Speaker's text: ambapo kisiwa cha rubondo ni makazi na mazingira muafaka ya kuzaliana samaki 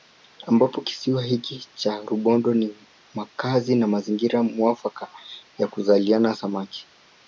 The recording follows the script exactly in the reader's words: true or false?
false